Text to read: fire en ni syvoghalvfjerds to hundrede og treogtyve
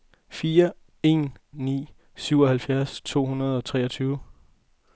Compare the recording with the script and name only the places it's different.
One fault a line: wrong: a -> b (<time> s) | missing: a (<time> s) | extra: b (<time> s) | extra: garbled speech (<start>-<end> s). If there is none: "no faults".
no faults